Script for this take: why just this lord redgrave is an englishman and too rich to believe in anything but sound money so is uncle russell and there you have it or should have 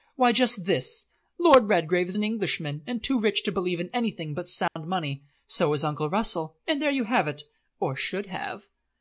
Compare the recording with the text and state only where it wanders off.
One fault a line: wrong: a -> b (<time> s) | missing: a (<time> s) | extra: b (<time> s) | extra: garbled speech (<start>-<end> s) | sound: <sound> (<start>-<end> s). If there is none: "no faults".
sound: dropout (4.7-4.8 s)